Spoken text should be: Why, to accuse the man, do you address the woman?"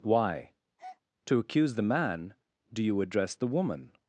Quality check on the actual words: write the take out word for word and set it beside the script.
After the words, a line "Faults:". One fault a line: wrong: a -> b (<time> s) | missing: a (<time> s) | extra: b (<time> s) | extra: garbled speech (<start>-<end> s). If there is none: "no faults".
Why, to accuse the man, do you address the woman?"
Faults:
no faults